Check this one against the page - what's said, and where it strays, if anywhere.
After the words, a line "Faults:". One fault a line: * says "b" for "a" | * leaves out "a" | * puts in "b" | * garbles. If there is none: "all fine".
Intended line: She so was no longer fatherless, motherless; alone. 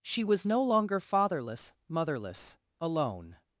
She was no longer fatherless, motherless; alone.
Faults:
* leaves out "so"